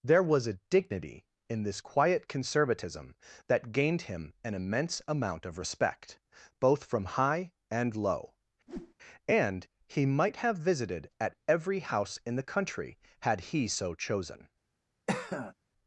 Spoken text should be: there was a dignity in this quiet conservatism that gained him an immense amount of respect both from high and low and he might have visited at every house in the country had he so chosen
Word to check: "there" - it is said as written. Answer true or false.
true